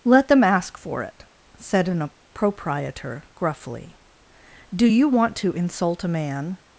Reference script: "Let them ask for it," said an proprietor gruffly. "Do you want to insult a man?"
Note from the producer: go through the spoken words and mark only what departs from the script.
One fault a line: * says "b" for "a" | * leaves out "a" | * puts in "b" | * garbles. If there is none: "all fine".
all fine